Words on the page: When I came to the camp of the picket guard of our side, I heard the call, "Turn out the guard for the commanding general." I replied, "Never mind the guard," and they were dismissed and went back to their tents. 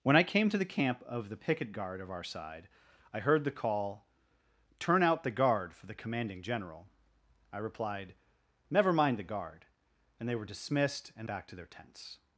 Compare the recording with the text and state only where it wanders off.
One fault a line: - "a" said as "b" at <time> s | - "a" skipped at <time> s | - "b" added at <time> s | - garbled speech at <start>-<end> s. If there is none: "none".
- "went" skipped at 11.3 s